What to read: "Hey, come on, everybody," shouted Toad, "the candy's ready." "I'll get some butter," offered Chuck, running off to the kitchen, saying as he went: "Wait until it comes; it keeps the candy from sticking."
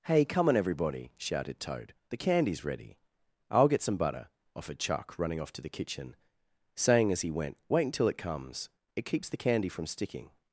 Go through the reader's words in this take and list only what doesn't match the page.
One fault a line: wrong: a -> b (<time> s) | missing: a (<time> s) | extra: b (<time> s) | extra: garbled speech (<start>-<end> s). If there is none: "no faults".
no faults